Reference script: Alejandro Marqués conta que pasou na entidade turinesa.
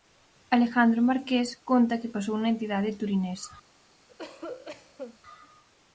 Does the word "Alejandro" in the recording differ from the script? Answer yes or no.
no